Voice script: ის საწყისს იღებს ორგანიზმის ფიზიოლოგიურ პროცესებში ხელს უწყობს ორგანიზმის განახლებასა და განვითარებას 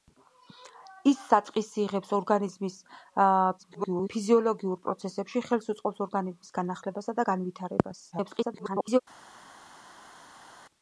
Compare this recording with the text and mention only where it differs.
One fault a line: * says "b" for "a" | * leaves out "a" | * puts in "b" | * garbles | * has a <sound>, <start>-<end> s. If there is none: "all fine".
* garbles
* garbles